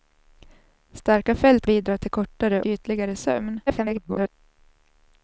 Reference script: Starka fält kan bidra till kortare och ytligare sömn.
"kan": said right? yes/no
no